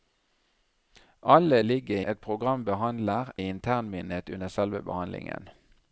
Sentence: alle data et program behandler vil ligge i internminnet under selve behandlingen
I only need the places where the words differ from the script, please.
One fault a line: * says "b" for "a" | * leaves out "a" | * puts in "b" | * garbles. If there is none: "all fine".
* says "ligge" for "data"
* leaves out "vil ligge"